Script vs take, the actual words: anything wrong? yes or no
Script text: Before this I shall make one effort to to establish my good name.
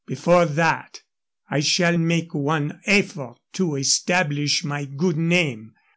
yes